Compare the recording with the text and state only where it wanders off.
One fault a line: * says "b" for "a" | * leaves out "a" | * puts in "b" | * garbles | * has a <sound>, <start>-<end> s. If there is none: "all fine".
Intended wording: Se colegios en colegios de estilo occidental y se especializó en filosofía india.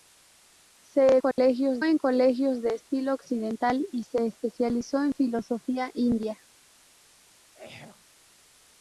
* has a dropout, 1.3-1.4 s
* has a throat clearing, 7.4-8.0 s